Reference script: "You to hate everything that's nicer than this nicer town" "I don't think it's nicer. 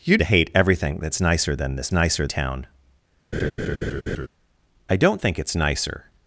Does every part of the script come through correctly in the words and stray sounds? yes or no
no